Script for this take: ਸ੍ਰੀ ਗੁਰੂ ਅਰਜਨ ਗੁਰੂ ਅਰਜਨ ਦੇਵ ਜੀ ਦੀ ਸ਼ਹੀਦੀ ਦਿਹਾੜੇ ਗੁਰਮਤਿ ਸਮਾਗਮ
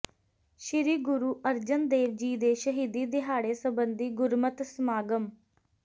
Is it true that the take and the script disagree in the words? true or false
true